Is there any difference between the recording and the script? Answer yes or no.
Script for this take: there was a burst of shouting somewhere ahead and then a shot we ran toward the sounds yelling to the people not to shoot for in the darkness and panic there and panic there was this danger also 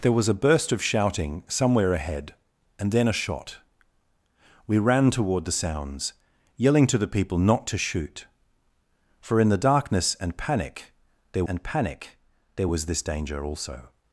no